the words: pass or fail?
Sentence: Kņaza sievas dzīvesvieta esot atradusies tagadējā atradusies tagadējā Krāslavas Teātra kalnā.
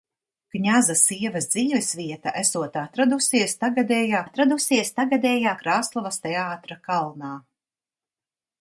pass